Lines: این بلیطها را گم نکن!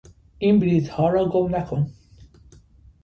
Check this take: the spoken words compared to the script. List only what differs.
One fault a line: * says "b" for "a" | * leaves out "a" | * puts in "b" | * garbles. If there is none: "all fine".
all fine